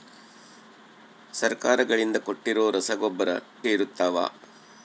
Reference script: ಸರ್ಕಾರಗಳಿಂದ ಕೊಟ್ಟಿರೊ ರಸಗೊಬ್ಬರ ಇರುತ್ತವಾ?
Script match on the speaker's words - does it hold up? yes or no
yes